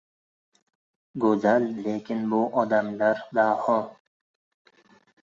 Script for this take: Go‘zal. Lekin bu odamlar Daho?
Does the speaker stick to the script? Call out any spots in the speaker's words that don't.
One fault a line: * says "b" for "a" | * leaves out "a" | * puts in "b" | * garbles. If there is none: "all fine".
all fine